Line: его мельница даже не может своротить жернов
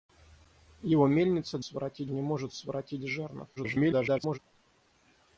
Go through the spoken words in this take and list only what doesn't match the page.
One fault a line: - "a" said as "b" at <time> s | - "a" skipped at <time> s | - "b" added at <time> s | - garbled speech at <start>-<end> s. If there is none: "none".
- "даже" said as "своротить" at 1.6 s
- garbled speech at 3.6-4.4 s